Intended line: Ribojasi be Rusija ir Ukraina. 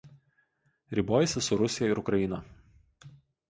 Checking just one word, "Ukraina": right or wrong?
right